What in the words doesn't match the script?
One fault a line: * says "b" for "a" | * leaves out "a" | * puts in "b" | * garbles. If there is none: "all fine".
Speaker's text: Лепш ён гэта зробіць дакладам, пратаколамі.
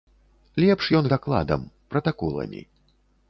* leaves out "гэта зробіць"